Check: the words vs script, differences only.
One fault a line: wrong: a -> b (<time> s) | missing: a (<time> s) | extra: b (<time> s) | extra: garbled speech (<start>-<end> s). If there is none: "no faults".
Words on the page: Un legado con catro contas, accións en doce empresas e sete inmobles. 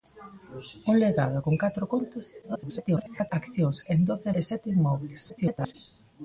extra: garbled speech (2.4-3.3 s)
missing: empresas (4.3 s)
extra: garbled speech (5.3-5.7 s)